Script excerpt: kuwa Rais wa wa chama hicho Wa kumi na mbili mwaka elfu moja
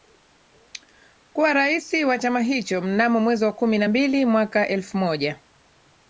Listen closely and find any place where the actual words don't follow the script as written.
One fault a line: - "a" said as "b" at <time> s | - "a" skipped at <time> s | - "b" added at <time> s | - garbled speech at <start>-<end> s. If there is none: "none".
- "wa" skipped at 2.2 s
- "Mnamo mwezi" added at 2.8 s